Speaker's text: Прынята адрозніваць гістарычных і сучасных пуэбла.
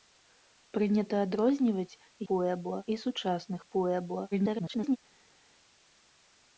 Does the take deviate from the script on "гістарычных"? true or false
true